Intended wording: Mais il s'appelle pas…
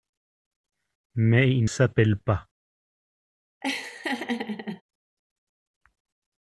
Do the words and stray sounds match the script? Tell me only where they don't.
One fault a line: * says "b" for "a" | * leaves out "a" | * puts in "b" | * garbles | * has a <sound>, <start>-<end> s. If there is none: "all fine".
* has a laugh, 3.6-4.8 s